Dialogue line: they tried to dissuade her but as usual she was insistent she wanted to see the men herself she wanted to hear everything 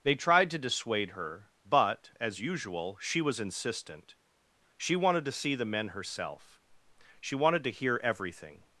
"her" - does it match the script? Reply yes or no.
yes